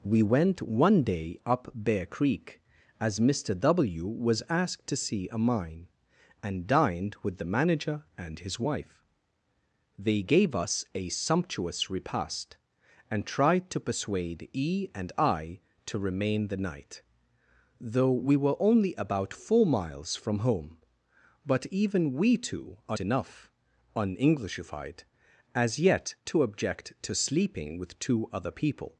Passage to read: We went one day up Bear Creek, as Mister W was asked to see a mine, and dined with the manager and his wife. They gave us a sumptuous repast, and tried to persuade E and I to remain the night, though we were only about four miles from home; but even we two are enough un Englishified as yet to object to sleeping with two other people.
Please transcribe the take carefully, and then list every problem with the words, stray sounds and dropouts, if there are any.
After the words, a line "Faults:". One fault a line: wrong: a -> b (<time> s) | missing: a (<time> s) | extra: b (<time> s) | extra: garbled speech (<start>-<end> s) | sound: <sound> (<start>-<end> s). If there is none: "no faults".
We went one day up Bear Creek, as Mister W was asked to see a mine, and dined with the manager and his wife. They gave us a sumptuous repast, and tried to persuade E and I to remain the night, though we were only about four miles from home; but even we two are enough un Englishified as yet to object to sleeping with two other people.
Faults:
no faults